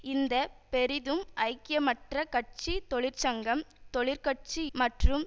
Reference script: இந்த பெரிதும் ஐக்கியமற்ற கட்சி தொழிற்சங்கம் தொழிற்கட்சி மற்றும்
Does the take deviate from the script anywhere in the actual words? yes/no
no